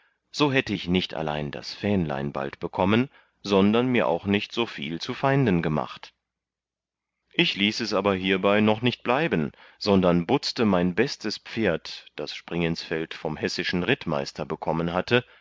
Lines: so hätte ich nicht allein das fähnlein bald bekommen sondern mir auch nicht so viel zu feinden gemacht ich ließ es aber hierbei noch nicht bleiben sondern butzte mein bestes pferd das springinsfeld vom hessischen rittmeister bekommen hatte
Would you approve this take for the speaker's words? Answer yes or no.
yes